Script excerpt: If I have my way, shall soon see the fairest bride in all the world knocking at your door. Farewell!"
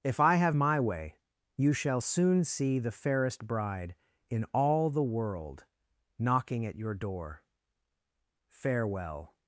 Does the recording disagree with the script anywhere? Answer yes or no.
yes